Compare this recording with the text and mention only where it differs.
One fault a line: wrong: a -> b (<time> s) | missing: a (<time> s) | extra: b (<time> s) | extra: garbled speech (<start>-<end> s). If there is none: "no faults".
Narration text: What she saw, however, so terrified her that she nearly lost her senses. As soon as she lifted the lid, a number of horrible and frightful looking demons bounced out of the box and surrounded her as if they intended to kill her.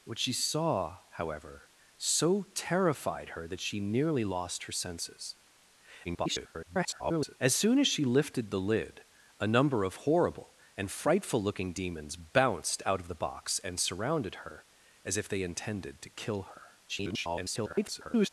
extra: garbled speech (6.0-7.4 s)
extra: garbled speech (16.9-18.3 s)